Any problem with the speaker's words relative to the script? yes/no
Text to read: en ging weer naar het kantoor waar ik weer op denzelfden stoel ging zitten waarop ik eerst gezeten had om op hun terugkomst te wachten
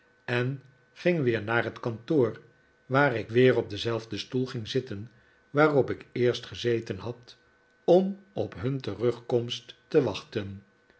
no